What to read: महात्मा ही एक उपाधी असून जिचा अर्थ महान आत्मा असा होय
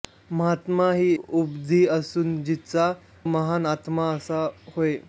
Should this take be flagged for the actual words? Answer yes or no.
yes